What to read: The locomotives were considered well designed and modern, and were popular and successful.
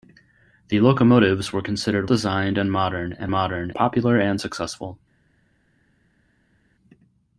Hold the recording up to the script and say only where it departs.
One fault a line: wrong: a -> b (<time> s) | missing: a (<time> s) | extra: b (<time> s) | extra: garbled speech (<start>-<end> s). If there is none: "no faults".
missing: well (2.1 s)
wrong: were -> modern (3.3 s)